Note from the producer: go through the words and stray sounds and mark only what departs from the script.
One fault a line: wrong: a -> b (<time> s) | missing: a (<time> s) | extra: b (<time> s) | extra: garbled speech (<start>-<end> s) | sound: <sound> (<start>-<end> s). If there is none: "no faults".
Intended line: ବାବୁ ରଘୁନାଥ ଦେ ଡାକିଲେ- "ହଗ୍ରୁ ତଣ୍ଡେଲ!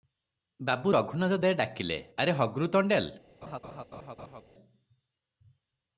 extra: ଆରେ (2.2 s)
sound: laugh (3.4-4.4 s)